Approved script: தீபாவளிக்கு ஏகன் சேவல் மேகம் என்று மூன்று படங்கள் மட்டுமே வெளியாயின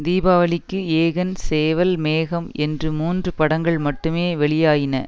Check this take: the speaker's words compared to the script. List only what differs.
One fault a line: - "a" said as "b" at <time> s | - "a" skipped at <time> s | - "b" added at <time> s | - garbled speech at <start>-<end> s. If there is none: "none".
none